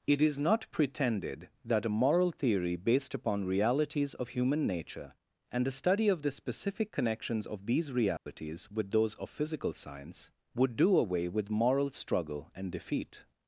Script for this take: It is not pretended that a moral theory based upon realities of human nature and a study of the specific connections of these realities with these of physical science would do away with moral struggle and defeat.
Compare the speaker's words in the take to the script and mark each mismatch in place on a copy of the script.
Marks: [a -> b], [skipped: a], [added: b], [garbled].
It is not pretended that a moral theory based upon realities of human nature and a study of the specific connections of these realities with [these -> those] of physical science would do away with moral struggle and defeat.